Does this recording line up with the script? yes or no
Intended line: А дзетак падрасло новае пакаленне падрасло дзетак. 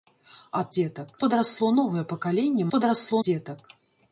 yes